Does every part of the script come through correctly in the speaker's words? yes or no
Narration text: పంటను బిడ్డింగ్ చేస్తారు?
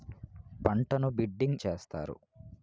yes